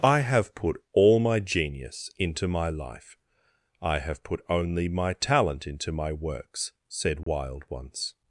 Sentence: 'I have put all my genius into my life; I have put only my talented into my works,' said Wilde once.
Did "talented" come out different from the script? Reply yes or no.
yes